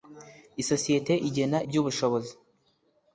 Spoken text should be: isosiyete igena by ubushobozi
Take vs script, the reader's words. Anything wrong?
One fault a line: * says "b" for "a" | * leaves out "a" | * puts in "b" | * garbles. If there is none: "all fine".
all fine